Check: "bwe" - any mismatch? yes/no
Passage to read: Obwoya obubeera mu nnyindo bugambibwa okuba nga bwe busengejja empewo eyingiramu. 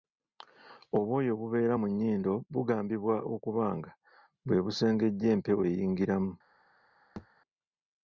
no